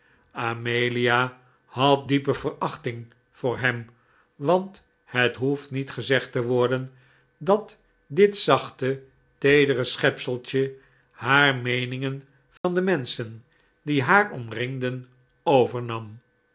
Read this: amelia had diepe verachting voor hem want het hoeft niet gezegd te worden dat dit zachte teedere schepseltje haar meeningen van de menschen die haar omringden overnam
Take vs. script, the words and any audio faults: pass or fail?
fail